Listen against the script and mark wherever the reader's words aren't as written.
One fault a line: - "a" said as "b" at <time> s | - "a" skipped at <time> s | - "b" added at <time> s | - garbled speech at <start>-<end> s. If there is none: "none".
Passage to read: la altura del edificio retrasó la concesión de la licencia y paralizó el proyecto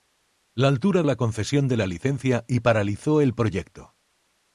- "del edificio retrasó" skipped at 1.0 s